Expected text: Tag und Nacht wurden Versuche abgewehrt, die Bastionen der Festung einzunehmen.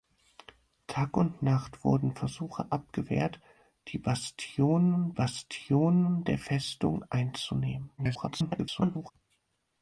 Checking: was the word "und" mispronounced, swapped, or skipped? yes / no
no